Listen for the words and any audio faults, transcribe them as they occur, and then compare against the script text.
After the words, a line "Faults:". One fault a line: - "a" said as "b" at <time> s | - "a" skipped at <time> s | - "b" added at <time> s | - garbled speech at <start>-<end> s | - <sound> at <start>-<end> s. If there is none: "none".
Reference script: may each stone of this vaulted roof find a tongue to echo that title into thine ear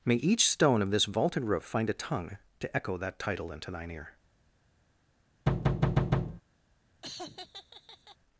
may each stone of this vaulted roof find a tongue to echo that title into thine ear
Faults:
- thud at 5.5-6.4 s
- laugh at 7.0-8.2 s